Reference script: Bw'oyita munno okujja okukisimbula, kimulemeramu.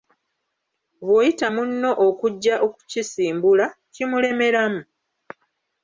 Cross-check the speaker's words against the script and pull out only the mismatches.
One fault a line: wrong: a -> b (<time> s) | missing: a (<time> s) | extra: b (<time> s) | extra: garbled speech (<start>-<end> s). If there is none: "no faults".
no faults